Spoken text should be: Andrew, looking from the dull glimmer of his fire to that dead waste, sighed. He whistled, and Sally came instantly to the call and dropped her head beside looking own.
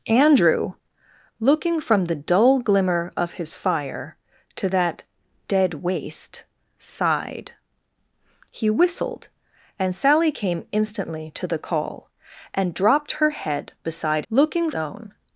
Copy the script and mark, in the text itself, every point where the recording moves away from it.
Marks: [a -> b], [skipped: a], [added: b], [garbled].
Andrew, looking from the dull glimmer of his fire to that dead waste, sighed. He whistled, and Sally came instantly to the call and dropped her head beside looking own.